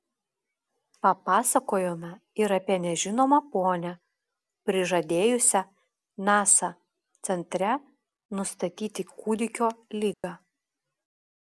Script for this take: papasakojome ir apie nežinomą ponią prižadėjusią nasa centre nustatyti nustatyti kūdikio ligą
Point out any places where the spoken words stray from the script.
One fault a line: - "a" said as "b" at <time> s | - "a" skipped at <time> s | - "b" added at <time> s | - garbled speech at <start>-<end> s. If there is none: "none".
- "nustatyti" skipped at 9.1 s